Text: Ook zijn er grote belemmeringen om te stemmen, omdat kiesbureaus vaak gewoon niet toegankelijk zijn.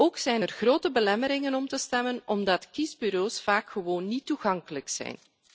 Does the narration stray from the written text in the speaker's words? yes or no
no